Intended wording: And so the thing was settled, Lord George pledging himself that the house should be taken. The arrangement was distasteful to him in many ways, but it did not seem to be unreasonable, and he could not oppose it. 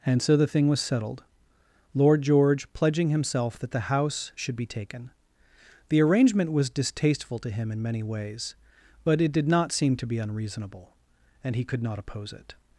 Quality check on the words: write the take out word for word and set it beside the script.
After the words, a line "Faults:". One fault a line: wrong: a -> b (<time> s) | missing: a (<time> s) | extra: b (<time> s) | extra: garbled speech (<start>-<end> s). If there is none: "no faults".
And so the thing was settled, Lord George pledging himself that the house should be taken. The arrangement was distasteful to him in many ways, but it did not seem to be unreasonable, and he could not oppose it.
Faults:
no faults